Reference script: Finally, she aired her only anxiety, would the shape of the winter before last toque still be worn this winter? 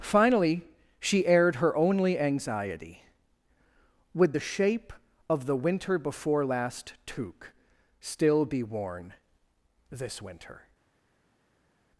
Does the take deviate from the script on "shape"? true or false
false